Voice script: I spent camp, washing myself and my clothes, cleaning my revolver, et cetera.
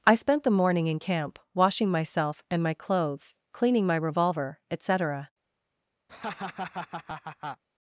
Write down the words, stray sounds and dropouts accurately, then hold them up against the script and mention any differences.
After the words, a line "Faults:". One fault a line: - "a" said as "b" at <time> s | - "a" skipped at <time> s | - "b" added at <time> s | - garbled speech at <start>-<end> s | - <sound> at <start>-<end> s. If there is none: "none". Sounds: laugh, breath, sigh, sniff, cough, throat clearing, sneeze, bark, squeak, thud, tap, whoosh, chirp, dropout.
I spent the morning in camp, washing myself and my clothes, cleaning my revolver, et cetera.
Faults:
- "the morning in" added at 0.4 s
- laugh at 6.1-7.6 s